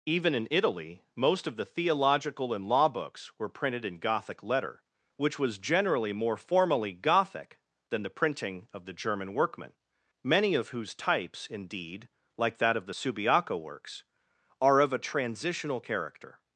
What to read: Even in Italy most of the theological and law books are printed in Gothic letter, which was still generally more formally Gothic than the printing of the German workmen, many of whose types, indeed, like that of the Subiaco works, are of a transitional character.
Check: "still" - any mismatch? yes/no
yes